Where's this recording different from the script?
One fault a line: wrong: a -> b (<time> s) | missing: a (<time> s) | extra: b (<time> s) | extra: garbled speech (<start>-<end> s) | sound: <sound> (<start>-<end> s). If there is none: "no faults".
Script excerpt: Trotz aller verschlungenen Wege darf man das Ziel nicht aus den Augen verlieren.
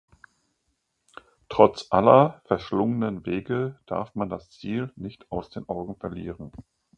no faults